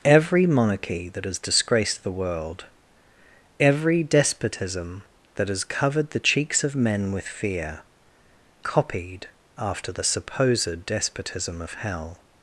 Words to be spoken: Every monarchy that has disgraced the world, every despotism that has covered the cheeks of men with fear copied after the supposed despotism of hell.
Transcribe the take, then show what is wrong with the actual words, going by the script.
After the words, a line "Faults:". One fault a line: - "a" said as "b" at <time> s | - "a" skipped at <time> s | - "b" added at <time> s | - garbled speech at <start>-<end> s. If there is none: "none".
Every monarchy that has disgraced the world, every despotism that has covered the cheeks of men with fear copied after the supposed despotism of hell.
Faults:
none